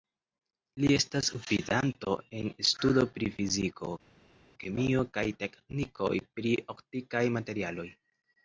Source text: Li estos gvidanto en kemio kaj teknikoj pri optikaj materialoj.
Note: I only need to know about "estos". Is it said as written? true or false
false